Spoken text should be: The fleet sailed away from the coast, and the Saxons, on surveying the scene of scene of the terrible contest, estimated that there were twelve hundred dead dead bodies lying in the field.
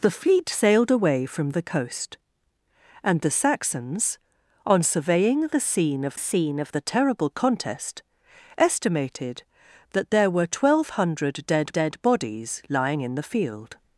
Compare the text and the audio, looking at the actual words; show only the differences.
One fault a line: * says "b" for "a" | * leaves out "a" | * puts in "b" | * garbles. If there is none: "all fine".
all fine